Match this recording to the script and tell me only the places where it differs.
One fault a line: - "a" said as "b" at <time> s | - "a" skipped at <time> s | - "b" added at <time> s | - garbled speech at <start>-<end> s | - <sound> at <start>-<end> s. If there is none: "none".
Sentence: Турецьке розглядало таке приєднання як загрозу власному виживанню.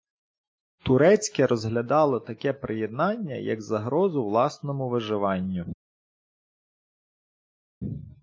none